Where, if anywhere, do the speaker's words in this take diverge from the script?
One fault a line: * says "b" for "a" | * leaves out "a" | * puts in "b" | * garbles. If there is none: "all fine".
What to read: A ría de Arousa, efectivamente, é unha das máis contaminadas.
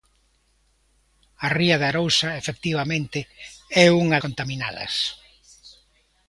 * leaves out "das máis"